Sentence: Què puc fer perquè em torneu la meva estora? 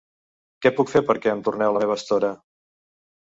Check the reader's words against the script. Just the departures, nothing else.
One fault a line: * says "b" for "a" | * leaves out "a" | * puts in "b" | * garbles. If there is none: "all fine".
all fine